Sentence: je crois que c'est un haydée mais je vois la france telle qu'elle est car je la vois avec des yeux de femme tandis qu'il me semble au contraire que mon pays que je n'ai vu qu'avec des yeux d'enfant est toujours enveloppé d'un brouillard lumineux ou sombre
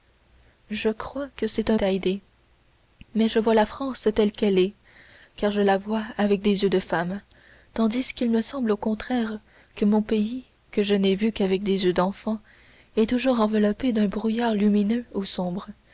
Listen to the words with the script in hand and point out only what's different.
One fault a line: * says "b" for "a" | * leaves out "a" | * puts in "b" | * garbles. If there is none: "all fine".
all fine